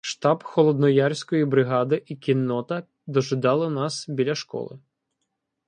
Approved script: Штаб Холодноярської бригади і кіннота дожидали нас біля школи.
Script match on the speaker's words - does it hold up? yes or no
yes